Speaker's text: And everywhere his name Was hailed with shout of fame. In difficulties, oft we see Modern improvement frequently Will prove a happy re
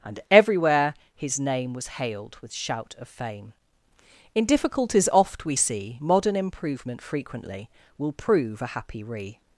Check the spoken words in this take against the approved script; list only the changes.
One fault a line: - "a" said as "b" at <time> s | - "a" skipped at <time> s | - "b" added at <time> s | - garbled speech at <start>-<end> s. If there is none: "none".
none